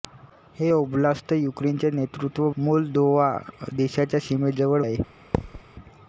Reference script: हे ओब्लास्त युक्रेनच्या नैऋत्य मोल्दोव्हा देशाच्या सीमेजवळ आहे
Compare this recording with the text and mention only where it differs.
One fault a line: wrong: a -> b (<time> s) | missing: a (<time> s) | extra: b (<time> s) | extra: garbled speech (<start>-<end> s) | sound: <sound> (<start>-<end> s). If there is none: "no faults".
sound: thud (5.3-5.6 s)